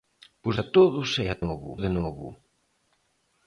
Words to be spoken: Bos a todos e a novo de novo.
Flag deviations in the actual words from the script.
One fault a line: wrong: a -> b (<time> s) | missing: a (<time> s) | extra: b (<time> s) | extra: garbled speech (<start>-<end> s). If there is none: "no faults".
no faults